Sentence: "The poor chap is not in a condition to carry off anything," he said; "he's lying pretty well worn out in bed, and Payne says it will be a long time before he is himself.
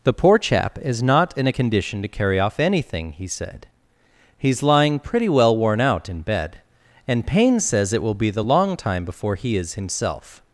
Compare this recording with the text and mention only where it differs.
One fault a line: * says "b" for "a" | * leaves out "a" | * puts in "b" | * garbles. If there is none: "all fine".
* says "the" for "a"